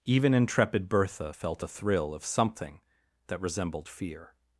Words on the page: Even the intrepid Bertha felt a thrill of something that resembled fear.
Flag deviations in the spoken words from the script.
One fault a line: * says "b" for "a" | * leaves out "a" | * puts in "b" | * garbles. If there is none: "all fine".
* leaves out "the"